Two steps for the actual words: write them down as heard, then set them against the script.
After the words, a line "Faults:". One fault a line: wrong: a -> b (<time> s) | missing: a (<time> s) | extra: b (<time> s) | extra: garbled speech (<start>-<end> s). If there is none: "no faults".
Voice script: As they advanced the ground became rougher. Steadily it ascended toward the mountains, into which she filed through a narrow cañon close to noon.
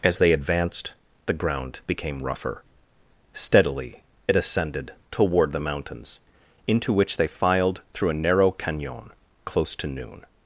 As they advanced the ground became rougher. Steadily it ascended toward the mountains, into which they filed through a narrow cañon close to noon.
Faults:
wrong: she -> they (7.1 s)